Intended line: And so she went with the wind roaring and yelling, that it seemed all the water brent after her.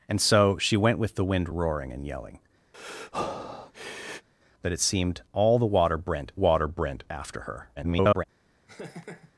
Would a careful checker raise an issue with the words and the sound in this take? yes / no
yes